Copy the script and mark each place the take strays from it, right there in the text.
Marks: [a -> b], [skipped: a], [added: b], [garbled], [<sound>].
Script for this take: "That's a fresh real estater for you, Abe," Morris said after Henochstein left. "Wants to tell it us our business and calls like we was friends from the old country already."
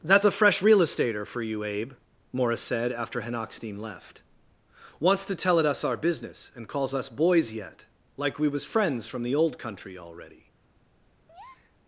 "That's a fresh real estater for you, Abe," Morris said after Henochstein left. "Wants to tell it us our business and calls [added: us boys yet] like we was friends from the old country already." [breath]